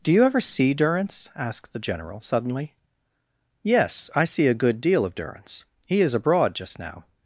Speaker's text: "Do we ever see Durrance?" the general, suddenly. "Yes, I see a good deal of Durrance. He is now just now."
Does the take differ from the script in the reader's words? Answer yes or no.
yes